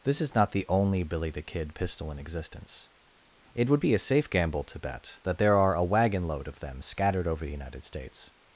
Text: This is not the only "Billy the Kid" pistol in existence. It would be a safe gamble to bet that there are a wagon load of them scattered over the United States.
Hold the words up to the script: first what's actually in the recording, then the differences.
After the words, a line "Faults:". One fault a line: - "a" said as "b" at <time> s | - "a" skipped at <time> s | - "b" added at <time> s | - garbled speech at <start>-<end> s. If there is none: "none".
This is not the only "Billy the Kid" pistol in existence. It would be a safe gamble to bet that there are a wagon load of them scattered over the United States.
Faults:
none